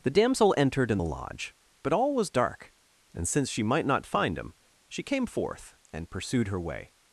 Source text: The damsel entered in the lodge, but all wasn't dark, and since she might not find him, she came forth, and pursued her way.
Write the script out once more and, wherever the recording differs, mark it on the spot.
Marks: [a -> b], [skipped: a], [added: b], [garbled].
The damsel entered in the lodge, but all [wasn't -> was] dark, and since she might not find him, she came forth, and pursued her way.